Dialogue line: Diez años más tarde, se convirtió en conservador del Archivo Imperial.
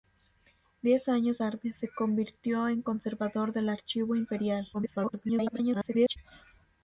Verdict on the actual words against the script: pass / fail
fail